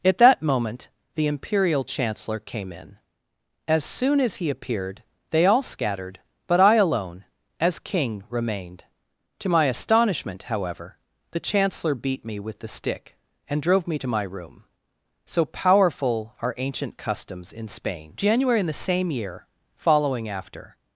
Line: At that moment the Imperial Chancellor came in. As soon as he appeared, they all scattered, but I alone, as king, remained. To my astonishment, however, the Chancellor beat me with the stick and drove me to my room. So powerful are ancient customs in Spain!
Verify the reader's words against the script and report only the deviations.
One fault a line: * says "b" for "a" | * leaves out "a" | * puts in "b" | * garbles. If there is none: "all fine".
* puts in "January in the same year following after"